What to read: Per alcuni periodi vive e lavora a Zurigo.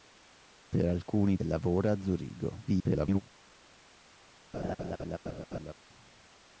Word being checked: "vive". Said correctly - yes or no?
no